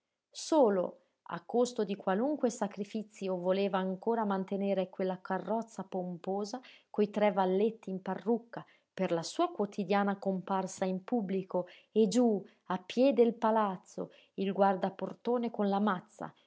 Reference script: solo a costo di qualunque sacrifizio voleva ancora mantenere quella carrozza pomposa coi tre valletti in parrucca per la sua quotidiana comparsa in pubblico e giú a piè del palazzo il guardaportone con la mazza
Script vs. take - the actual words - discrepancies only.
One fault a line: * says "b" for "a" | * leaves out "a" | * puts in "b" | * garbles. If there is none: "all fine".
all fine